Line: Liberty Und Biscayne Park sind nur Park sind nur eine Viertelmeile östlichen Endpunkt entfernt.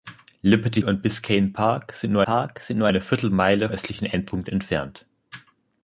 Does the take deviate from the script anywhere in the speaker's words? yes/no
no